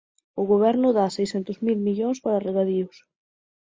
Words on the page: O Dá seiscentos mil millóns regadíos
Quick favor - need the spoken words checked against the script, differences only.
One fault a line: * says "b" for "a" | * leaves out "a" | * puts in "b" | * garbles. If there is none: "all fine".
* puts in "Goberno"
* puts in "para"